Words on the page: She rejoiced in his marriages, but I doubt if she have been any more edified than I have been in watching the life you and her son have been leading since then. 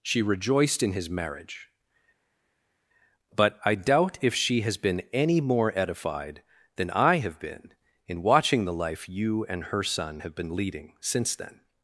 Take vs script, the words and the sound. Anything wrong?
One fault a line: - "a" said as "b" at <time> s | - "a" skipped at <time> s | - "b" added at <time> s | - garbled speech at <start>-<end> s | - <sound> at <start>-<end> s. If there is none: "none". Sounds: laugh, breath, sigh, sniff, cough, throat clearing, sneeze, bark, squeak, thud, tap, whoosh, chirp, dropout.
- "marriages" said as "marriage" at 1.1 s
- "have" said as "has" at 4.6 s